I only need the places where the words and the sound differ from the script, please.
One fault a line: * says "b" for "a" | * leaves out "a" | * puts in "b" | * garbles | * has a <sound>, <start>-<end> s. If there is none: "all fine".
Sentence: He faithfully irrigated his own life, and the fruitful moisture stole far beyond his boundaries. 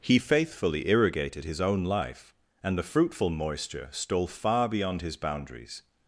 all fine